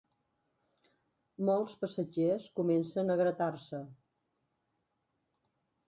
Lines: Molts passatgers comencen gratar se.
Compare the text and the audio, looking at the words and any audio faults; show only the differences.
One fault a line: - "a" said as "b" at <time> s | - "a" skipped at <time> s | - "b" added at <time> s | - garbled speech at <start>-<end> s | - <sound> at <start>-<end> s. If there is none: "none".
- "a" added at 3.1 s